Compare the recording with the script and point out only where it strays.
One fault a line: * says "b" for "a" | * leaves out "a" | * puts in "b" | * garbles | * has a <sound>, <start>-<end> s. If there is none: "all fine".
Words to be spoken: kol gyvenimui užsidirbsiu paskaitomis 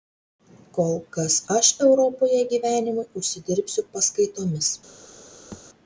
* puts in "kas aš europoje"
* has a thud, 5.5-5.6 s